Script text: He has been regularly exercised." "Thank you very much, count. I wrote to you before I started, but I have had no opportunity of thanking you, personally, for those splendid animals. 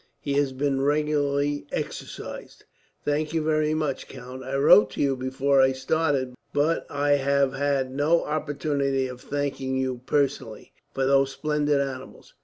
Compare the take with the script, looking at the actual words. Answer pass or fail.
pass